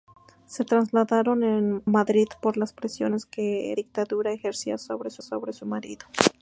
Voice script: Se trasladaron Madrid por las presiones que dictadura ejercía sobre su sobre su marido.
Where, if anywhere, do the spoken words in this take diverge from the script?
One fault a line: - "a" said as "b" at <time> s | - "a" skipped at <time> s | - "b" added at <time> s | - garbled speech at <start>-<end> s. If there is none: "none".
none